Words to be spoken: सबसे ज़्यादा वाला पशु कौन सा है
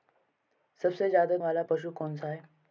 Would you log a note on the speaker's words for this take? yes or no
no